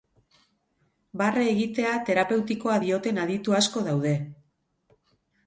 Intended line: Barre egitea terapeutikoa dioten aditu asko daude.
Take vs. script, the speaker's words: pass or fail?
pass